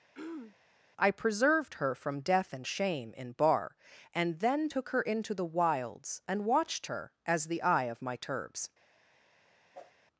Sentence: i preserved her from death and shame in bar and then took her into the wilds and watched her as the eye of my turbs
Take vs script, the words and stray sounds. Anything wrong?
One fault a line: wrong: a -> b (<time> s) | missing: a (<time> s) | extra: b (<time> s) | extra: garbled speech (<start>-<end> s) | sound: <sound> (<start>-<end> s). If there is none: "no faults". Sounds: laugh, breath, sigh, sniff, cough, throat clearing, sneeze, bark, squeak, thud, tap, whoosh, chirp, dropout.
sound: throat clearing (0.1-0.6 s)
sound: whoosh (9.7-9.9 s)